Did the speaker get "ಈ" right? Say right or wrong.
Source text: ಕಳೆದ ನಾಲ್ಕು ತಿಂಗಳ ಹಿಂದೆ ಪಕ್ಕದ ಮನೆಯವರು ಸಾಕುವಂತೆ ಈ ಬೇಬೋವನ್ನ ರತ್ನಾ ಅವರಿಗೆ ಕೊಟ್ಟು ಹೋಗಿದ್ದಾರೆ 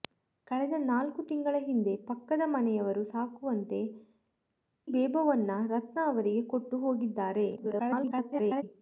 wrong